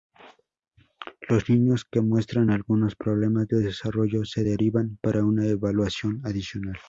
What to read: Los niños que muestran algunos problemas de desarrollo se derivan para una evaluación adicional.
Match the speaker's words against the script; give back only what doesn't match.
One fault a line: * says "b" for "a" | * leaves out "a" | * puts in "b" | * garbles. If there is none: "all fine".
all fine